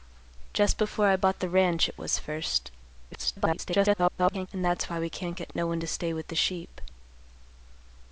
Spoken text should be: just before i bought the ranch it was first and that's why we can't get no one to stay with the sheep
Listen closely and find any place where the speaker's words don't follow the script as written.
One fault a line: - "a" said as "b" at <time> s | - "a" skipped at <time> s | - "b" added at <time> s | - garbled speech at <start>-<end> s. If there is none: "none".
- garbled speech at 3.1-4.5 s